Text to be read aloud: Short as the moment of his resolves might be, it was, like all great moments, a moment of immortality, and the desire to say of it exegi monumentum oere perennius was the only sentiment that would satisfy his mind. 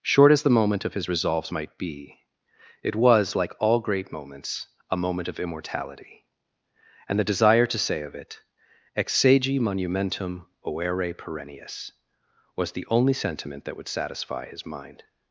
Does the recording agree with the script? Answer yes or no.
yes